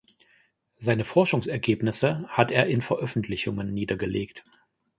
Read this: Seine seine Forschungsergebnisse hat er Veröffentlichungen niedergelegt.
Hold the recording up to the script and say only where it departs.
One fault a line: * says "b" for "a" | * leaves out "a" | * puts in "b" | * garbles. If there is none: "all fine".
* leaves out "seine"
* puts in "in"